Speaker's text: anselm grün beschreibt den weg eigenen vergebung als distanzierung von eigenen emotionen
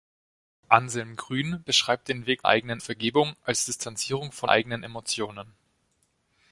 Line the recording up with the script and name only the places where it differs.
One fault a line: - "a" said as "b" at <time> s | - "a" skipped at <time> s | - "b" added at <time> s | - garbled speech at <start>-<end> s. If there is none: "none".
none